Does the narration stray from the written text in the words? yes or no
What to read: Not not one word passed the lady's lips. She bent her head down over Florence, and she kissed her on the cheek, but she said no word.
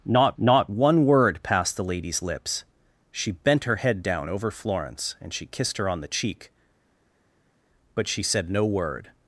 no